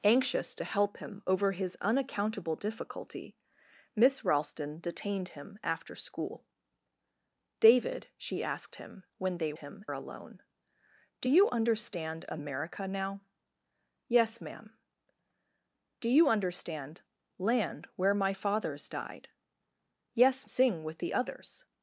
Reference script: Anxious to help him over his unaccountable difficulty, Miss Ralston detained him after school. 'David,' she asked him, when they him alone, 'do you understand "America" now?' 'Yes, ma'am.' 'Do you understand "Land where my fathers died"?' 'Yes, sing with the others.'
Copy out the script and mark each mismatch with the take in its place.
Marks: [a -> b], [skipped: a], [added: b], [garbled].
Anxious to help him over his unaccountable difficulty, Miss Ralston detained him after school. 'David,' she asked him, when they him alone, 'do you understand "America" now?' 'Yes, ma'am.' 'Do you understand "Land where my fathers died"?' 'Yes, sing with the others.'